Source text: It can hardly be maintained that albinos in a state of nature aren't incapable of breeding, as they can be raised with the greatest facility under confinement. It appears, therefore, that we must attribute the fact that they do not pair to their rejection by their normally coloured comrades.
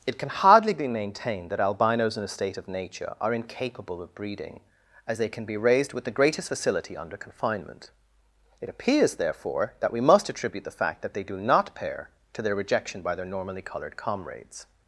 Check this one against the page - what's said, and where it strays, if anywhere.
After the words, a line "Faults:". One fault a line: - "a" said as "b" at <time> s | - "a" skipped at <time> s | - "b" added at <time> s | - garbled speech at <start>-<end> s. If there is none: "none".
It can hardly be maintained that albinos in a state of nature are incapable of breeding, as they can be raised with the greatest facility under confinement. It appears, therefore, that we must attribute the fact that they do not pair to their rejection by their normally coloured comrades.
Faults:
- "aren't" said as "are" at 3.2 s